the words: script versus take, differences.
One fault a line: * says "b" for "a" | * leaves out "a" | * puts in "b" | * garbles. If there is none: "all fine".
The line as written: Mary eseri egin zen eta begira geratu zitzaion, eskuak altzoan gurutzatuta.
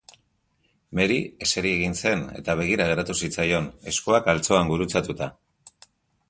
all fine